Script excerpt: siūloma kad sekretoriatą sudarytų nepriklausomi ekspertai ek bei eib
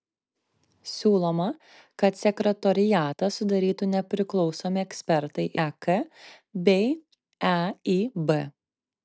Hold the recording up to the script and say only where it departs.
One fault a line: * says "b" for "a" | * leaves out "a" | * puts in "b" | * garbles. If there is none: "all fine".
all fine